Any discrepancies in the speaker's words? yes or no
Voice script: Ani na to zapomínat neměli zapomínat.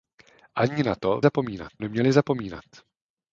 no